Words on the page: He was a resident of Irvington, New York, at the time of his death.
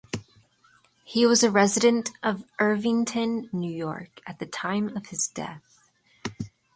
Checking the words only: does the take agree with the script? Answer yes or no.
yes